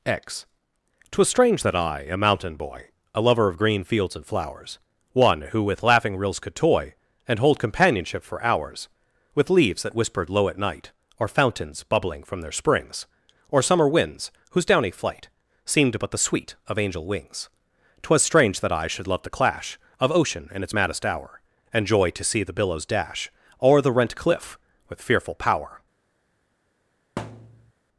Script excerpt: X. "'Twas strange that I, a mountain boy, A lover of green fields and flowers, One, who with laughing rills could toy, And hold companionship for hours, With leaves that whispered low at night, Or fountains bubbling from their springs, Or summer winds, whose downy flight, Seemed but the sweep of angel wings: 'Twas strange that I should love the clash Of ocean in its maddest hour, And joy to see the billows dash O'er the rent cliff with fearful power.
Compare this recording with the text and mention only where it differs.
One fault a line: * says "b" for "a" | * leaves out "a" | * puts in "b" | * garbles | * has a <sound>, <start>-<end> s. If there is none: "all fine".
* says "sweet" for "sweep"
* has a thud, 27.2-27.7 s